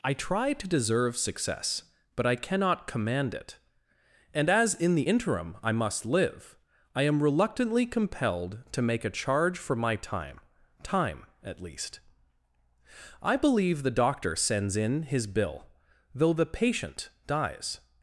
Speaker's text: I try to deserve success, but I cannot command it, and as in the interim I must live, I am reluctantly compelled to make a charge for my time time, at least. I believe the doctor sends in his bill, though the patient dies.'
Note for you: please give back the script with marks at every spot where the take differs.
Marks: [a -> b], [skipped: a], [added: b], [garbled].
I try to deserve success, but I cannot command it, and as in the interim I must live, I am reluctantly compelled to make a charge for my time time, at least. I believe the doctor sends in his bill, though the patient dies.'